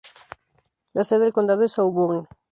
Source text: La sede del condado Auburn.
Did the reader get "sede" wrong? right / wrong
right